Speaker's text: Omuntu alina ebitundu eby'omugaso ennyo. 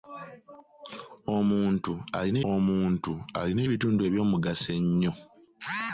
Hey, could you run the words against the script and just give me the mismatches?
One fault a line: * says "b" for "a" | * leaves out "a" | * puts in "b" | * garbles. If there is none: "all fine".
* puts in "omuntu alina"